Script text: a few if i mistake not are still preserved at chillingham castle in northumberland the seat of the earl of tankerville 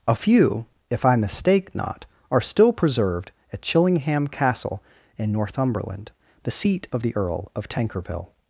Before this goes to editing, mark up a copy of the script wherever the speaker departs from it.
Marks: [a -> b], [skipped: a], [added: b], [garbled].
a few if i mistake not are still preserved at chillingham castle in northumberland the seat of the earl of tankerville